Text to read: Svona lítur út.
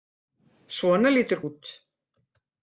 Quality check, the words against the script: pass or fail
pass